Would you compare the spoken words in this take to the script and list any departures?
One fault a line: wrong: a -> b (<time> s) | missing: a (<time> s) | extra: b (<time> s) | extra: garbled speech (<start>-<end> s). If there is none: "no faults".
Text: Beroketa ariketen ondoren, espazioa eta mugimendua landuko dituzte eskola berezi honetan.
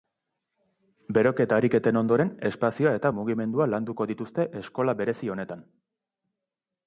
no faults